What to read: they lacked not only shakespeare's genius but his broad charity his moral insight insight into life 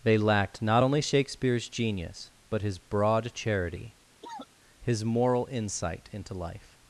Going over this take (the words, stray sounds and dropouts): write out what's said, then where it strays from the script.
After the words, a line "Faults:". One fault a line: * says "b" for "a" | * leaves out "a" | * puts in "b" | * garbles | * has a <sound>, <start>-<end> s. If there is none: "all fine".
they lacked not only shakespeare's genius but his broad charity his moral insight into life
Faults:
* has a cough, 4.2-4.5 s
* leaves out "insight"